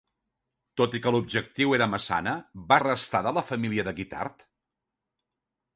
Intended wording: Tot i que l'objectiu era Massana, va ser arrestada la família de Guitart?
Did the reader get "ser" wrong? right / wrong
wrong